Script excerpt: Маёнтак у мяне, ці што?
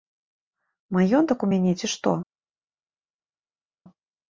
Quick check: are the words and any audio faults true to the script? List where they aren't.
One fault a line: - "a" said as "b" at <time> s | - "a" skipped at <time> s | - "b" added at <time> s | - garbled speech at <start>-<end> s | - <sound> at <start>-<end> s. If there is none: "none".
none